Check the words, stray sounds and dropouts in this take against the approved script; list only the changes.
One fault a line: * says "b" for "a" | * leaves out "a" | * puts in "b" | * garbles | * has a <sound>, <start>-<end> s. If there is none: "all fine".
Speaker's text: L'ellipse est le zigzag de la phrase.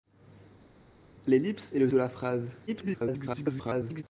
* leaves out "zigzag"
* garbles